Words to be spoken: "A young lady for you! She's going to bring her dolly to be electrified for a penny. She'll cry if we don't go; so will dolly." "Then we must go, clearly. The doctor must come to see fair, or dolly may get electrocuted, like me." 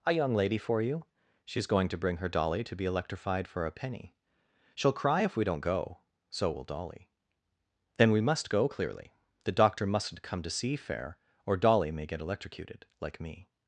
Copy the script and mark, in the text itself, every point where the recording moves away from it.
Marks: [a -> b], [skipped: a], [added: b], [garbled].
"A young lady for you! She's going to bring her dolly to be electrified for a penny. She'll cry if we don't go; so will dolly." "Then we must go, clearly. The doctor [must -> mustn't] come to see fair, or dolly may get electrocuted, like me."